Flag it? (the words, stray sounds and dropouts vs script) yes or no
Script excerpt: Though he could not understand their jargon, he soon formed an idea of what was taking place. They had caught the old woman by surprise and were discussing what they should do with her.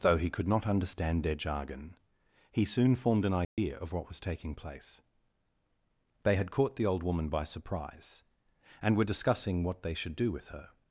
yes